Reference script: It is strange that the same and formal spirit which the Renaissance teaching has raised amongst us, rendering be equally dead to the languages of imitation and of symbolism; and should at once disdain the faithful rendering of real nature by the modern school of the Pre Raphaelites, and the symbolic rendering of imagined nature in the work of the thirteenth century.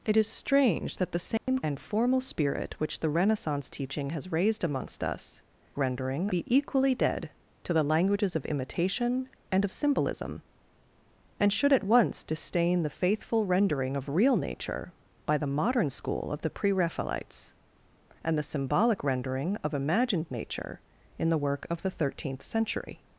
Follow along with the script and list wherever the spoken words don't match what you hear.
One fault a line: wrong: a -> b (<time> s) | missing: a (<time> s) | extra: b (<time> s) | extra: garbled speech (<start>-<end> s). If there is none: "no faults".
no faults